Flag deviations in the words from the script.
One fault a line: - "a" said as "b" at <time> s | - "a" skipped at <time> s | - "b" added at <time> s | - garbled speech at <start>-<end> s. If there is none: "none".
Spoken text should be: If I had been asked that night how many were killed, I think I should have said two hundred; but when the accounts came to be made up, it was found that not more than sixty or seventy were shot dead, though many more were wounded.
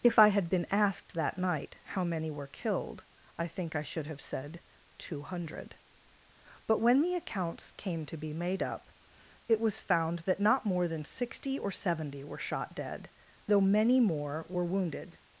none